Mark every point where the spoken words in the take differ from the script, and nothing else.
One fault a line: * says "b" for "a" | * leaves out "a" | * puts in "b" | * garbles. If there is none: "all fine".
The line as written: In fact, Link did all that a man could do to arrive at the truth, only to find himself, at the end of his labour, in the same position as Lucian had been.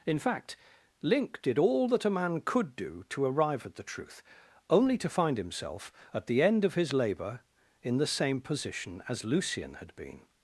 all fine